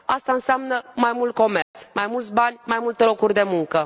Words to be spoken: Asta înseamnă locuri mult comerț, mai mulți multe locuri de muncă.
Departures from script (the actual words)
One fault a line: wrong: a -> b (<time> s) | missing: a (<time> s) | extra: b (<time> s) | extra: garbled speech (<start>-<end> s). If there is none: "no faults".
wrong: locuri -> mai (0.9 s)
extra: bani mai (2.3 s)